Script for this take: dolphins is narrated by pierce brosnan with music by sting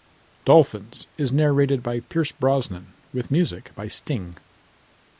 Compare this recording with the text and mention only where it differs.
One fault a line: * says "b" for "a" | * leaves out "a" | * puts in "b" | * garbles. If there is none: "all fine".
all fine